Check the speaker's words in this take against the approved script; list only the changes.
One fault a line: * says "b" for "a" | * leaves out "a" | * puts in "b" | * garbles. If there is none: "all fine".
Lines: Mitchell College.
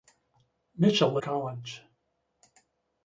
all fine